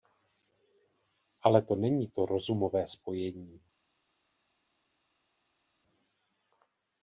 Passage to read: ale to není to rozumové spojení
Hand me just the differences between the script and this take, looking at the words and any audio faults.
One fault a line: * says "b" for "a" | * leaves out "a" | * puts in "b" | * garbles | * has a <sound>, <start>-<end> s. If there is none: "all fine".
all fine